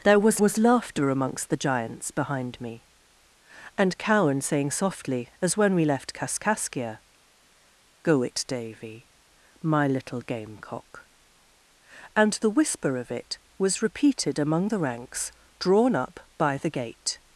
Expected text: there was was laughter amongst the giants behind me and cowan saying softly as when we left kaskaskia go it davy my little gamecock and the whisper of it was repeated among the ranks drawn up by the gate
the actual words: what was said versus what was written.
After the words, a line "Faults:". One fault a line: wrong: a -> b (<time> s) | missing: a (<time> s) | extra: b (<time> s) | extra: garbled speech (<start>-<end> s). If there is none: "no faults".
there was was laughter amongst the giants behind me and cowan saying softly as when we left kaskaskia go it davy my little gamecock and the whisper of it was repeated among the ranks drawn up by the gate
Faults:
no faults